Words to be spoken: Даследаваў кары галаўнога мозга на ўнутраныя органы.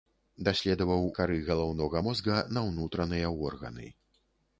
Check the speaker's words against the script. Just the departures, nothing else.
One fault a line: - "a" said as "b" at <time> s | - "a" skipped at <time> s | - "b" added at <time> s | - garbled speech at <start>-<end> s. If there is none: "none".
none